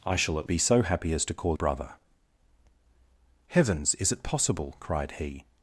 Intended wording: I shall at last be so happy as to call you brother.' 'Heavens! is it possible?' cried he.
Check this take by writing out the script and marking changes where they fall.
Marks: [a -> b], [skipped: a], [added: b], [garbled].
I shall at [skipped: last] be so happy as to call [skipped: you] brother.' 'Heavens! is it possible?' cried he.